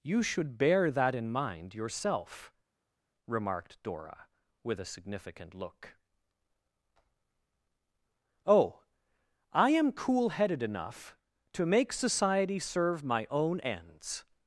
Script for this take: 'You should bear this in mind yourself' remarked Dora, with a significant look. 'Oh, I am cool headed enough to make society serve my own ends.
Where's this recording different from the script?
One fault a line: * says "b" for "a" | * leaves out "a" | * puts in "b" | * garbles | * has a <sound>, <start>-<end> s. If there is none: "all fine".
* says "that" for "this"